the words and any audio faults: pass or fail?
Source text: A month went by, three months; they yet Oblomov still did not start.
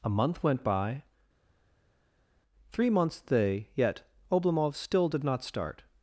pass